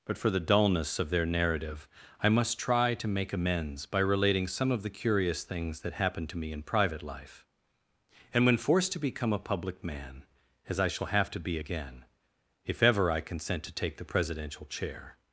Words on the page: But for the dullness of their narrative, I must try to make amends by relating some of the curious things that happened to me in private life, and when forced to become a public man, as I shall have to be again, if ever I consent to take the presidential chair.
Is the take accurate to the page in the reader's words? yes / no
yes